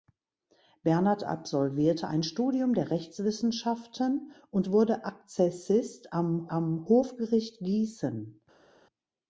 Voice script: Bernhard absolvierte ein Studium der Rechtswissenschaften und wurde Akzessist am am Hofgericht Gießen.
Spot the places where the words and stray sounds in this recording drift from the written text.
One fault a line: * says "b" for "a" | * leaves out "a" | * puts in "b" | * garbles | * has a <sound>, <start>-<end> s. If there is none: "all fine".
all fine